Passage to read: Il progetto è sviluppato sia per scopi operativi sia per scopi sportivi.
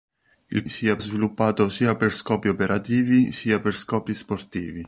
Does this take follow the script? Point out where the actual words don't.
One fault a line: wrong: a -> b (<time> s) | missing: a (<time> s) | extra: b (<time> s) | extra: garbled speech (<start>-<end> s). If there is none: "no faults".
wrong: progetto -> sia (0.7 s)